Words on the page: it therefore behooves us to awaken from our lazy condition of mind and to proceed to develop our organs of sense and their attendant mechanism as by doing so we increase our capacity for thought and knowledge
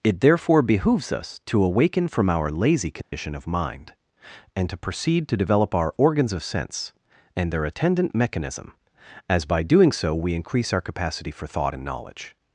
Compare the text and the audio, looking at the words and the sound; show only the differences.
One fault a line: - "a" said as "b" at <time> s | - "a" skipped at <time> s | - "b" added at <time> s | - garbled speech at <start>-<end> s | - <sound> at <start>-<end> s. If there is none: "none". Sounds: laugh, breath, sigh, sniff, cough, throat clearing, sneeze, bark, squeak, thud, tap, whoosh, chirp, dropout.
- dropout at 3.0-3.1 s